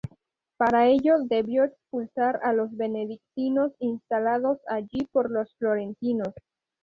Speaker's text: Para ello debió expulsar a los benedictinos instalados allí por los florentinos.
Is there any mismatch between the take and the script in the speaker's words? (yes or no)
no